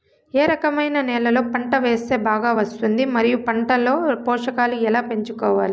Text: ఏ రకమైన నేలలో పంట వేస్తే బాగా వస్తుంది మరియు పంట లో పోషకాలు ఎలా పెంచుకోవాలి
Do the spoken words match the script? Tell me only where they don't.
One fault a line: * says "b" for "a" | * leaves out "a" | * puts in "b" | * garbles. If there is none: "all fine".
all fine